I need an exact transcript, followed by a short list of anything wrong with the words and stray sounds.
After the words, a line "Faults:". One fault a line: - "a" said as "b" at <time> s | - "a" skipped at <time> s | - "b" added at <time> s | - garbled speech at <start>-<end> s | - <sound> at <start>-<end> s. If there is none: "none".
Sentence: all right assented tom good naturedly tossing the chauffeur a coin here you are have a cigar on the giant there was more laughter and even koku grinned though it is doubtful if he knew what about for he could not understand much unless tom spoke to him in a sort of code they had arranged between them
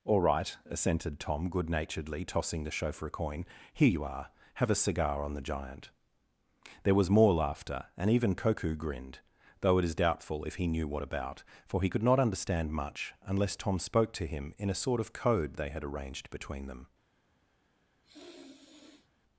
all right assented tom good naturedly tossing the chauffeur a coin here you are have a cigar on the giant there was more laughter and even koku grinned though it is doubtful if he knew what about for he could not understand much unless tom spoke to him in a sort of code they had arranged between them
Faults:
- sniff at 18.0-19.1 s